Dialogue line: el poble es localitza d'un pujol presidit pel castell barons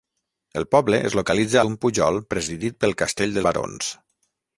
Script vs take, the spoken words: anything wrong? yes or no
no